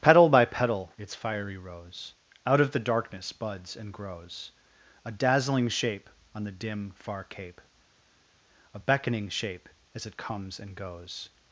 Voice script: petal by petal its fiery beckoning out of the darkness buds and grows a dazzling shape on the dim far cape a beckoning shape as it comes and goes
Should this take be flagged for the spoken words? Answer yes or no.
yes